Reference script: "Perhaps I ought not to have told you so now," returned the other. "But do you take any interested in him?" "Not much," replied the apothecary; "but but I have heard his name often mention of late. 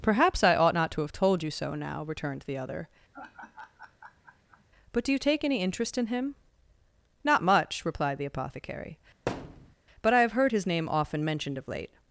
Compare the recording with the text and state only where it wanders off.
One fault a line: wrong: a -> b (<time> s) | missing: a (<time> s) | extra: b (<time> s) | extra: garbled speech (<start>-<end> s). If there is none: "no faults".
wrong: interested -> interest (5.6 s)
missing: but (10.1 s)
wrong: mention -> mentioned (11.2 s)